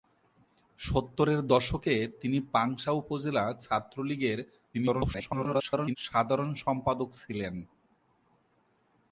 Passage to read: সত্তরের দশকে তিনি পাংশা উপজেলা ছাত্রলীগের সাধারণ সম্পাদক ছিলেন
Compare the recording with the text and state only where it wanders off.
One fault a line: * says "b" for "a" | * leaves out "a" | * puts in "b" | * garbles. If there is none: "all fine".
* garbles